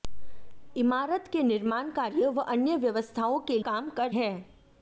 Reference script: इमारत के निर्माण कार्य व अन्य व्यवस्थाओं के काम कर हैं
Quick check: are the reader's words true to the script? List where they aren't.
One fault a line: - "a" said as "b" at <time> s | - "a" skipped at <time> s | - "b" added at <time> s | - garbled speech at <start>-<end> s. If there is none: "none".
none